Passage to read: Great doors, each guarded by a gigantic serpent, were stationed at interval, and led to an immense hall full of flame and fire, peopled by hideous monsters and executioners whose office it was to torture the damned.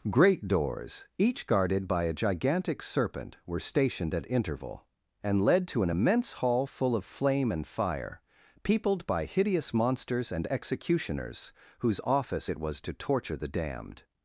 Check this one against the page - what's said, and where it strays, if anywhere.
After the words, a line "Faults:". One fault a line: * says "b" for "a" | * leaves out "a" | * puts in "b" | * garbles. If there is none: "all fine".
Great doors, each guarded by a gigantic serpent, were stationed at interval, and led to an immense hall full of flame and fire, peopled by hideous monsters and executioners whose office it was to torture the damned.
Faults:
all fine